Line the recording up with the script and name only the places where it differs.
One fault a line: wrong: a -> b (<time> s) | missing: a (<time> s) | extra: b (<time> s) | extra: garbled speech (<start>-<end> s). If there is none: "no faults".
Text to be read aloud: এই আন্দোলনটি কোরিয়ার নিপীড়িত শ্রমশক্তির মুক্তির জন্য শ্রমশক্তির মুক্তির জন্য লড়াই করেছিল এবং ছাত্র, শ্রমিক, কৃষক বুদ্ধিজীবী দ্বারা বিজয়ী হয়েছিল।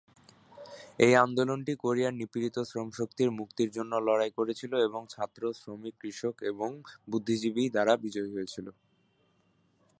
missing: শ্রমশক্তির মুক্তির জন্য (3.9 s)
extra: এবং (6.5 s)